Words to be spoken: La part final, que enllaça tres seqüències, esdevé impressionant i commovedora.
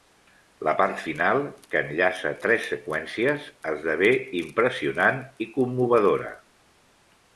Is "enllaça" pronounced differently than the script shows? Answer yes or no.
no